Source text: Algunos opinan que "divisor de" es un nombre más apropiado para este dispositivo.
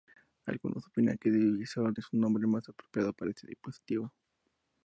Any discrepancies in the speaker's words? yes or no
no